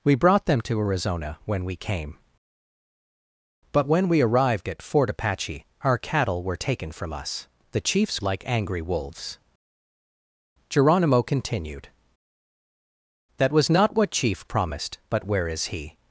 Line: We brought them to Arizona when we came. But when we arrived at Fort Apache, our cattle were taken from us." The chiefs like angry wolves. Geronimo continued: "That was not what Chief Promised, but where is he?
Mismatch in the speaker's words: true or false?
false